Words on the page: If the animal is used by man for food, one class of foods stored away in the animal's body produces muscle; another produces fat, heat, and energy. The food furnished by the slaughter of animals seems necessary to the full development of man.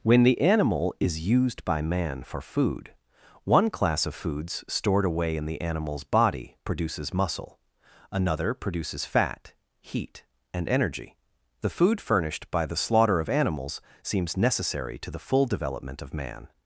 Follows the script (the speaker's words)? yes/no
no